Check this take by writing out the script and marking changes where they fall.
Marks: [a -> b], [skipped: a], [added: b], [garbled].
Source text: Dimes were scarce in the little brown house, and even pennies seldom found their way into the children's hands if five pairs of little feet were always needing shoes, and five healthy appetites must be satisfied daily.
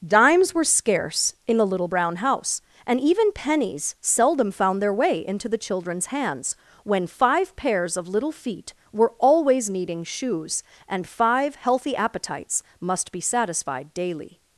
Dimes were scarce in the little brown house, and even pennies seldom found their way into the children's hands [if -> when] five pairs of little feet were always needing shoes, and five healthy appetites must be satisfied daily.